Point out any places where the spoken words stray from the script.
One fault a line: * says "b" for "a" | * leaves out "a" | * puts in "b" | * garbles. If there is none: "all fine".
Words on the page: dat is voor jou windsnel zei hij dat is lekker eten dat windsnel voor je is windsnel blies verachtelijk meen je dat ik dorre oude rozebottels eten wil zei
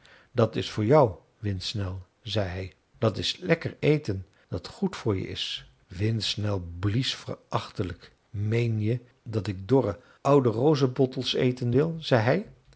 * says "goed" for "windsnel"